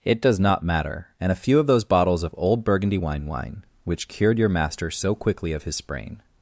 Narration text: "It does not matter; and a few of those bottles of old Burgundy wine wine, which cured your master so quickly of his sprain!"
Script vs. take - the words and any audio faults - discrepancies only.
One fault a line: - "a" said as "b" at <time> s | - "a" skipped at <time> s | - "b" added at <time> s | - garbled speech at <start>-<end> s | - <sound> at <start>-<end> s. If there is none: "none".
none